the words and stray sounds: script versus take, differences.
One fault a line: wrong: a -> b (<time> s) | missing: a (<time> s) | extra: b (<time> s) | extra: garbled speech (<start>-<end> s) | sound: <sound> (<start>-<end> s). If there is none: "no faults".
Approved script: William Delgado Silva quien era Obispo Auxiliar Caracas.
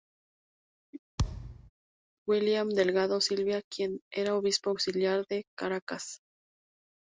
sound: thud (1.2-1.7 s)
extra: de (5.3 s)